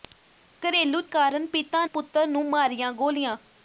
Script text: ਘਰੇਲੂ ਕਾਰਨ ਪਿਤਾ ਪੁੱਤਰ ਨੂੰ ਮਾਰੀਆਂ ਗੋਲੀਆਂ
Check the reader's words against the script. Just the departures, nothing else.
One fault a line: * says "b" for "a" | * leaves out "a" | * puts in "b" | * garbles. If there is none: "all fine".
all fine